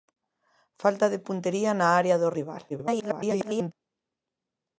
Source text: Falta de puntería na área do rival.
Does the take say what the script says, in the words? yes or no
no